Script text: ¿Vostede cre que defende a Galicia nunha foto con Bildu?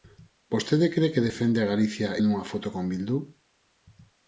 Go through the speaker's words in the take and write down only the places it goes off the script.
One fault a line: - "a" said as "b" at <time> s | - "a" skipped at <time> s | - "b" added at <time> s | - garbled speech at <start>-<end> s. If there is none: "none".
none